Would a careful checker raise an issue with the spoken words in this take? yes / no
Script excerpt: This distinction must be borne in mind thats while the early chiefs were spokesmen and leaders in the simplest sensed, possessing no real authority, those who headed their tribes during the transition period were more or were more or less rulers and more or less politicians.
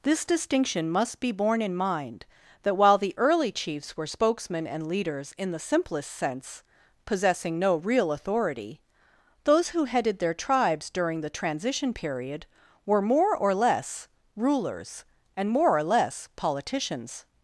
yes